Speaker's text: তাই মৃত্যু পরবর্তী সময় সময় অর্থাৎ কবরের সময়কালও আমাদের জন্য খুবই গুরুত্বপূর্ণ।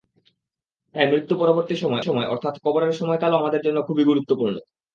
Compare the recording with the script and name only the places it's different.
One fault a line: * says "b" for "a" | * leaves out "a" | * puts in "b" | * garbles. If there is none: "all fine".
all fine